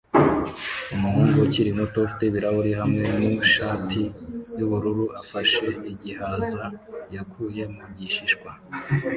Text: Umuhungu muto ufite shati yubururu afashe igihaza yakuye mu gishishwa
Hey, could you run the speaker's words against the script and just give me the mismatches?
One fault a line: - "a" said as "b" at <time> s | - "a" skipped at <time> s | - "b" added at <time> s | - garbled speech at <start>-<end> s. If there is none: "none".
- "ukiri" added at 1.4 s
- "ibirahuri hamwe nu" added at 2.3 s